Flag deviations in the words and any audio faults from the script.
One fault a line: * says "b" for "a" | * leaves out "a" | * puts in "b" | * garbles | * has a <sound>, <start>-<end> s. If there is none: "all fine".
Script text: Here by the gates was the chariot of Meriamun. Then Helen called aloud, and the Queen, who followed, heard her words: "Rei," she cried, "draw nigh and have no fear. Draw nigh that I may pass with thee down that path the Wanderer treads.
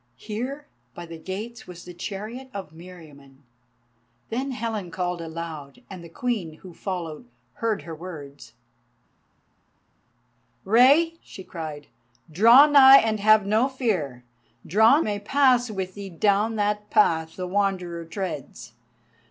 * leaves out "nigh that I"